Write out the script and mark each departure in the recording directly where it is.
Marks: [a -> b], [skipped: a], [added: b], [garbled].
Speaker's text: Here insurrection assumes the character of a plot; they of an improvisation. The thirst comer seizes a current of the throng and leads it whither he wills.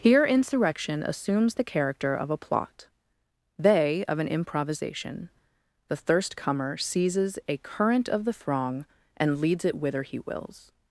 Here insurrection assumes the character of a plot; they of an improvisation. The thirst comer seizes a current of the throng and leads it whither he wills.